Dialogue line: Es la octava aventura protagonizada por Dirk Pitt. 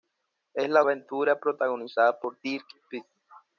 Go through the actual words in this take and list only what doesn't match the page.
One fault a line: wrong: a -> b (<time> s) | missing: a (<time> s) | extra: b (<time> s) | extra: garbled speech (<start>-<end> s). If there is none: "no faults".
missing: octava (0.8 s)